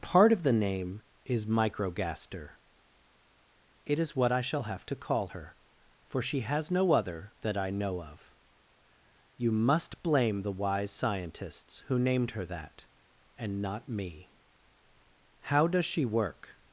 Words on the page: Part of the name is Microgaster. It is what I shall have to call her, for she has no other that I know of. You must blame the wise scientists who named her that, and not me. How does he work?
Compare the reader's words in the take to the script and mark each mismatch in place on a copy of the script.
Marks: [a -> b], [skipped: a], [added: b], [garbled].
Part of the name is Microgaster. It is what I shall have to call her, for she has no other that I know of. You must blame the wise scientists who named her that, and not me. How does [he -> she] work?